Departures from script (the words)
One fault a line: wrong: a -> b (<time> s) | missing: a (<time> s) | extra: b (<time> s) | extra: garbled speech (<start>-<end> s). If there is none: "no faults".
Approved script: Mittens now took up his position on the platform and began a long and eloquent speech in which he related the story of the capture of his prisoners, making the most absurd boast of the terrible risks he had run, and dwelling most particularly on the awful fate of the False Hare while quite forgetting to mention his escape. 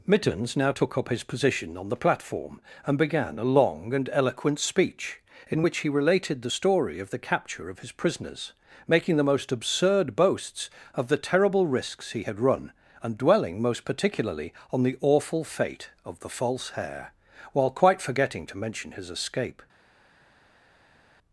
wrong: boast -> boasts (10.2 s)